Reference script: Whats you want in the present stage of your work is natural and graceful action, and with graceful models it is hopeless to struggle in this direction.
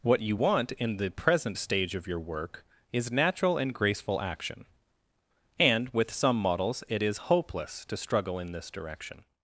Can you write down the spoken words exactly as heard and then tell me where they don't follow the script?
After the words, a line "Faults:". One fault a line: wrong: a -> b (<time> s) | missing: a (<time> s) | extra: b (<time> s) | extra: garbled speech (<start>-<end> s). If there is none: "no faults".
What you want in the present stage of your work is natural and graceful action, and with some models it is hopeless to struggle in this direction.
Faults:
wrong: Whats -> What (0.0 s)
wrong: graceful -> some (6.1 s)